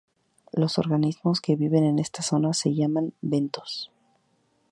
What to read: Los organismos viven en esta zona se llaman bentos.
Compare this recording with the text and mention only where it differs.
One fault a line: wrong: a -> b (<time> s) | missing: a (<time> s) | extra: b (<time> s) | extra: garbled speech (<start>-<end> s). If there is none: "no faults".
extra: que (1.4 s)